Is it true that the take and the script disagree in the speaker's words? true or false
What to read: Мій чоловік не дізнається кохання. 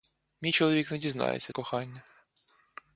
false